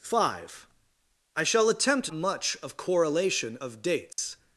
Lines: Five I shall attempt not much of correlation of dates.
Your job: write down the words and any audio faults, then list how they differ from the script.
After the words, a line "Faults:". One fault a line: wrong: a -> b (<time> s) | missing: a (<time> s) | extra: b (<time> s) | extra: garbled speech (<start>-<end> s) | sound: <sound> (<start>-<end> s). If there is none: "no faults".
Five I shall attempt much of correlation of dates.
Faults:
missing: not (2.1 s)
sound: dropout (4.1-4.2 s)